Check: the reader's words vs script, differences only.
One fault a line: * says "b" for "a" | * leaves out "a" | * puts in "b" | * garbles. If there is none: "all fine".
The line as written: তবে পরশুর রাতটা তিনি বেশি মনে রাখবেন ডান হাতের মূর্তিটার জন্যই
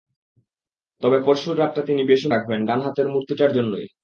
* leaves out "মনে"